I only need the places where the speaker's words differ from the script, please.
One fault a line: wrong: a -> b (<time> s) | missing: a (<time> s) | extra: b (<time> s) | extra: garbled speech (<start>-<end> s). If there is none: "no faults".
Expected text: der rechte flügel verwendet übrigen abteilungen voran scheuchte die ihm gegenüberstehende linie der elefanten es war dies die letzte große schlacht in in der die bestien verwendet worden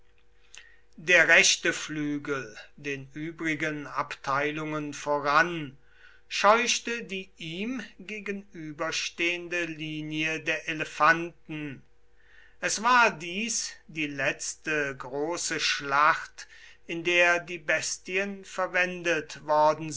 wrong: verwendet -> den (2.8 s)
missing: in (17.0 s)